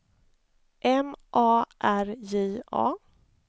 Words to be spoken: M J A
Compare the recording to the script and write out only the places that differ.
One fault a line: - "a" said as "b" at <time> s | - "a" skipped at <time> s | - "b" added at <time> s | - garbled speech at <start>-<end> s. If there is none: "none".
- "A R" added at 1.3 s